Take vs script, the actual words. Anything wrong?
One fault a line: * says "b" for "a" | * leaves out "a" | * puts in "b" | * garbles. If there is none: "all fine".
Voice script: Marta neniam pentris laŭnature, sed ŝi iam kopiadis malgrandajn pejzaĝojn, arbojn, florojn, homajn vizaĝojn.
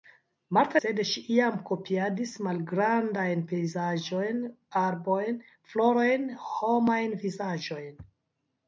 * leaves out "neniam pentris laŭnature"